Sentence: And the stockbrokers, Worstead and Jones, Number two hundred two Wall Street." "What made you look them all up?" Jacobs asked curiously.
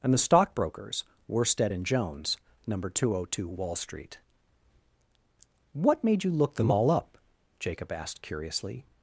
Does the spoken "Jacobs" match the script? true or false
false